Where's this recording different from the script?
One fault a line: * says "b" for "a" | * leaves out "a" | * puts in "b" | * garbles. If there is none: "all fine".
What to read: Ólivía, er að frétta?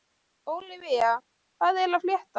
* puts in "hvað"